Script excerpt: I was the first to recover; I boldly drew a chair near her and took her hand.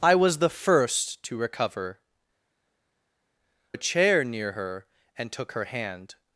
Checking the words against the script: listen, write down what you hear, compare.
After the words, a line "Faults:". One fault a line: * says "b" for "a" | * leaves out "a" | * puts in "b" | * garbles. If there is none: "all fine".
I was the first to recover; a chair near her and took her hand.
Faults:
* leaves out "I boldly drew"